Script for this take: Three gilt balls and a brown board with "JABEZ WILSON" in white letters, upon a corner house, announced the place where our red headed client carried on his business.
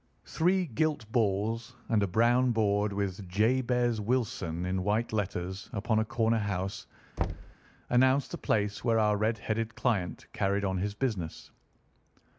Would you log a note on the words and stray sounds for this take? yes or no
yes